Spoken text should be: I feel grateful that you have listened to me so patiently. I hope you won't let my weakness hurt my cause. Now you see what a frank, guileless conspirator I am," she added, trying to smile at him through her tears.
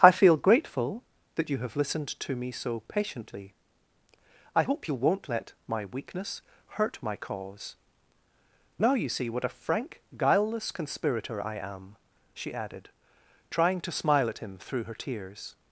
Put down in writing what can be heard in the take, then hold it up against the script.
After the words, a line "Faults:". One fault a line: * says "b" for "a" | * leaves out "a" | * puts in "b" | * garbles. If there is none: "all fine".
I feel grateful that you have listened to me so patiently. I hope you won't let my weakness hurt my cause. Now you see what a frank, guileless conspirator I am," she added, trying to smile at him through her tears.
Faults:
all fine